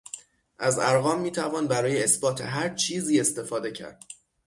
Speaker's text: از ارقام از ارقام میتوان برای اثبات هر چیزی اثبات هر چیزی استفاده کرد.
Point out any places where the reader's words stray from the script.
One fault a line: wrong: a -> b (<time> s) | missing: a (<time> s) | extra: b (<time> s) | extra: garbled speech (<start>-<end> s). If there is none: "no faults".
missing: از ارقام (1.2 s)
missing: اثبات هر چیزی (3.2 s)